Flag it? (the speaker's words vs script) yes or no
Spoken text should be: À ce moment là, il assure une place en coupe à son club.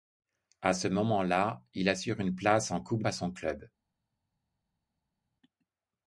no